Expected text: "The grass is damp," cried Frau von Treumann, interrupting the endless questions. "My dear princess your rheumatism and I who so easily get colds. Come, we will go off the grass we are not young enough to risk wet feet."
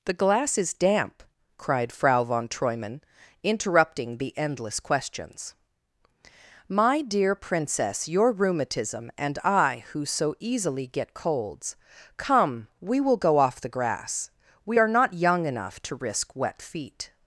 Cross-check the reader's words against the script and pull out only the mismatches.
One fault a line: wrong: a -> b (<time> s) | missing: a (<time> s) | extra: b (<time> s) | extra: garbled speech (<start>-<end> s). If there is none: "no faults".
wrong: grass -> glass (0.1 s)